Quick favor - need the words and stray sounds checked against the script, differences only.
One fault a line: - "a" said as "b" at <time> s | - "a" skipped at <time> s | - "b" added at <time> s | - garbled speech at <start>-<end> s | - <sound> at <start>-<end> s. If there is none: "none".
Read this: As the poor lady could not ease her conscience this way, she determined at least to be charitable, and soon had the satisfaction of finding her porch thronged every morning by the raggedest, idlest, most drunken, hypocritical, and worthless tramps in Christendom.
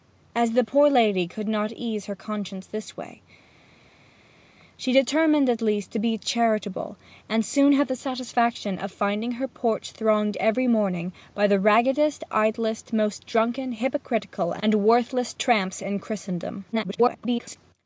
- garbled speech at 16.7-17.6 s